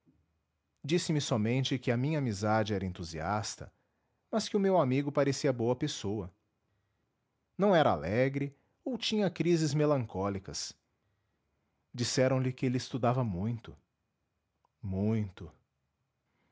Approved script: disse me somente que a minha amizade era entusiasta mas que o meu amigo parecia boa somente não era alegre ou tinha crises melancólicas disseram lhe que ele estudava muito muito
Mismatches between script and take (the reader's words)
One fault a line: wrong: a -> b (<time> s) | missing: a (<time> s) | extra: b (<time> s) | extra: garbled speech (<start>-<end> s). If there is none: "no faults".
wrong: somente -> pessoa (5.8 s)